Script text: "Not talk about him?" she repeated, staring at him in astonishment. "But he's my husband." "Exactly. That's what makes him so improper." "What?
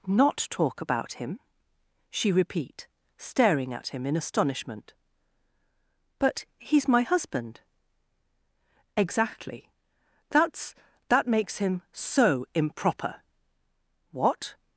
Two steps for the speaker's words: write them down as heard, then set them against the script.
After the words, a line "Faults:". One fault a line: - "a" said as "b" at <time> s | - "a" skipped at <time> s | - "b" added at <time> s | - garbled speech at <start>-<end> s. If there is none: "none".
"Not talk about him?" she repeat, staring at him in astonishment. "But he's my husband." "Exactly. That's that makes him so improper." "What?
Faults:
- "repeated" said as "repeat" at 2.3 s
- "what" said as "that" at 11.1 s